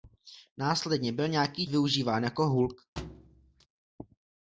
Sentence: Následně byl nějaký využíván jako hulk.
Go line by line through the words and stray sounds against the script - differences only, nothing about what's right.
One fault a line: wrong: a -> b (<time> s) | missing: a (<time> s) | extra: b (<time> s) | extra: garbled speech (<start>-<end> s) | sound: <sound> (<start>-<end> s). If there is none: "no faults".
sound: thud (3.0-3.7 s)